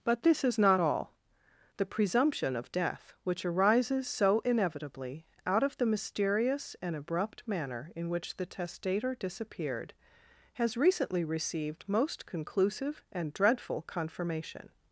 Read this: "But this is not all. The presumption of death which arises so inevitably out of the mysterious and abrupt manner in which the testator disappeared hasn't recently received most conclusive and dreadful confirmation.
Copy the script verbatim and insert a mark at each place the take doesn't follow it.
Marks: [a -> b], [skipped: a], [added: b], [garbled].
"But this is not all. The presumption of death which arises so inevitably out of the mysterious and abrupt manner in which the testator disappeared [hasn't -> has] recently received most conclusive and dreadful confirmation.